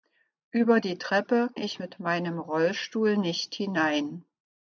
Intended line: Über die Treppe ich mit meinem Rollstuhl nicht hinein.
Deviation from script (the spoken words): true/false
false